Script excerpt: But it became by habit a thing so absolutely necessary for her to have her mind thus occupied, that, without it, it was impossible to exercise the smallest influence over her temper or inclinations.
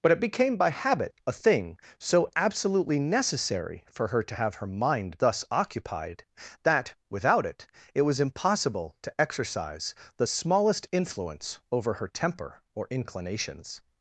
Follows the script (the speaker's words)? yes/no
yes